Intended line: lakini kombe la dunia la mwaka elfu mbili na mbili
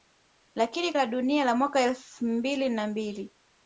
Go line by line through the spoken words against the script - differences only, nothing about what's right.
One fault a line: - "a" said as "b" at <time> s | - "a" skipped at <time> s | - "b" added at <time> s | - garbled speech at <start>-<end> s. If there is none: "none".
- "kombe" skipped at 0.9 s